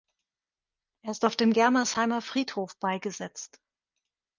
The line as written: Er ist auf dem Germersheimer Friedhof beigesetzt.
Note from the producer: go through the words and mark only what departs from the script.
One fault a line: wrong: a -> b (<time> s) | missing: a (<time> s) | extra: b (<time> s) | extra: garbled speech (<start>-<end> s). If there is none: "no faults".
no faults